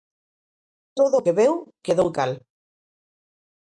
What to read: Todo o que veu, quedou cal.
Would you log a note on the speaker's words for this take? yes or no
no